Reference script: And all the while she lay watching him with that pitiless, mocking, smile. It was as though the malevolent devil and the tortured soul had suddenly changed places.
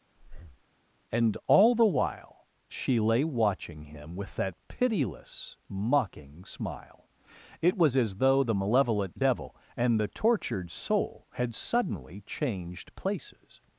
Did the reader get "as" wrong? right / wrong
right